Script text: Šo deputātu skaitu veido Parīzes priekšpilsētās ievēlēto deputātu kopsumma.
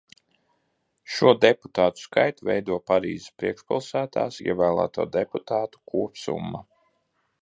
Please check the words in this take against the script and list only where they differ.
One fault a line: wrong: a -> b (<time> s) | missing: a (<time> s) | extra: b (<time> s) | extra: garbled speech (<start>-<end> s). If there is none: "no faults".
no faults